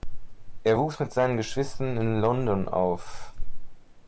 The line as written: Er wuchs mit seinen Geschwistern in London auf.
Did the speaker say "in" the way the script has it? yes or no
yes